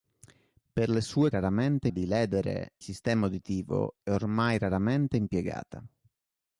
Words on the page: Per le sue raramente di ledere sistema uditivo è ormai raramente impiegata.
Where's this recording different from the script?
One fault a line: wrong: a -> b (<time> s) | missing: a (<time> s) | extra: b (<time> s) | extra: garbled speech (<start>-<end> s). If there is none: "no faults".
no faults